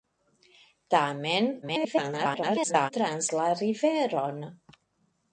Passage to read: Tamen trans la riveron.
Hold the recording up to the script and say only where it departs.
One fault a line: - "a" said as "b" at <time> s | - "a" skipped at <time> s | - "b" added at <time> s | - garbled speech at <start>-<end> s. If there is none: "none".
- garbled speech at 1.6-2.9 s